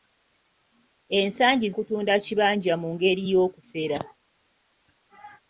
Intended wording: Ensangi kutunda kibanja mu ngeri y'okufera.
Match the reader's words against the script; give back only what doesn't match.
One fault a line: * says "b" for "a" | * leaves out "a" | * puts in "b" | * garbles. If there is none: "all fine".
all fine